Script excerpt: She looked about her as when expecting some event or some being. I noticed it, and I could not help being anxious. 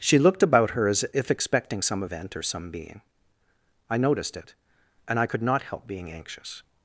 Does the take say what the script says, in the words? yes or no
no